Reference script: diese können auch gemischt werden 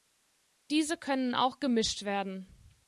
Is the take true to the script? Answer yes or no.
yes